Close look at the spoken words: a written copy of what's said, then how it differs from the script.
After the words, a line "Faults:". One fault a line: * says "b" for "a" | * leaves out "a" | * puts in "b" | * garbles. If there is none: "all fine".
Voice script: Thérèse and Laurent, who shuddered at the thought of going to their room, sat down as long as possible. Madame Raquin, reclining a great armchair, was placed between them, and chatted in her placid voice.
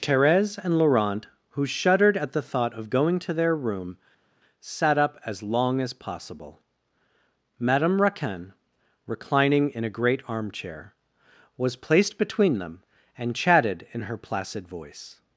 Thérèse and Laurent, who shuddered at the thought of going to their room, sat up as long as possible. Madame Raquin, reclining in a great armchair, was placed between them, and chatted in her placid voice.
Faults:
* says "up" for "down"
* puts in "in"